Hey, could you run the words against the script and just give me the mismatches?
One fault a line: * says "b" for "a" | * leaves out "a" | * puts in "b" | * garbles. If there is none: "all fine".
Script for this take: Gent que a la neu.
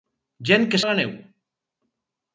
all fine